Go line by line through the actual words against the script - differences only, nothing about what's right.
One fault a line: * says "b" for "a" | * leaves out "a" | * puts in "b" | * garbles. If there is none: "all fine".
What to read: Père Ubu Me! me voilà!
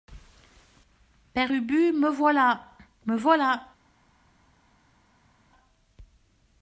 * puts in "voilà"